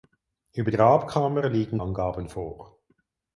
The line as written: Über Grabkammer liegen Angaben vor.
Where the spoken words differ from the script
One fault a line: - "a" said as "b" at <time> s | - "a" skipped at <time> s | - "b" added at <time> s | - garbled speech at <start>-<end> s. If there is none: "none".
none